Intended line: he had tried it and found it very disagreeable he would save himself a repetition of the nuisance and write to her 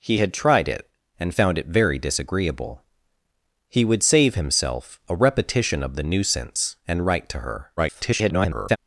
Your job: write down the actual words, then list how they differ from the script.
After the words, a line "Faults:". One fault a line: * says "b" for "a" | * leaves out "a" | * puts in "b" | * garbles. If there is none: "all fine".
he had tried it and found it very disagreeable he would save himself a repetition of the nuisance and write to her [garbled]
Faults:
* garbles